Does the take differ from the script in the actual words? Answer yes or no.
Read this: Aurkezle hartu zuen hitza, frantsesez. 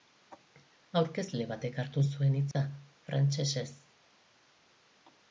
yes